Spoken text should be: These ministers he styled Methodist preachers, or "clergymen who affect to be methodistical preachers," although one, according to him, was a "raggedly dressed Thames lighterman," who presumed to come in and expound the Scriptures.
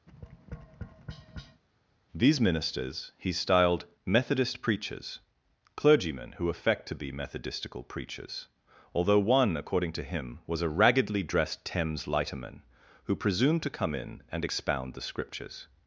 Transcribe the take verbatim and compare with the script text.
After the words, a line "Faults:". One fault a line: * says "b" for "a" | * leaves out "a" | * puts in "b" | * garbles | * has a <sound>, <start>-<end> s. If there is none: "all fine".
These ministers he styled Methodist preachers, "clergymen who affect to be methodistical preachers," although one, according to him, was a "raggedly dressed Thames lighterman," who presumed to come in and expound the Scriptures.
Faults:
* has a tap, 0.1-1.6 s
* leaves out "or"